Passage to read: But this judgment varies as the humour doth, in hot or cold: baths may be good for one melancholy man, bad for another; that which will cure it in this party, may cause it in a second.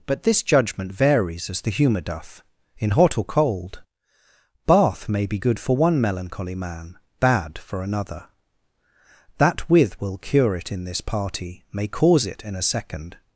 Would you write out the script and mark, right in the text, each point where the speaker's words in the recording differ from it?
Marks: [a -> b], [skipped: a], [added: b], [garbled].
But this judgment varies as the humour doth, in hot or cold: [baths -> bath] may be good for one melancholy man, bad for another; that [which -> with] will cure it in this party, may cause it in a second.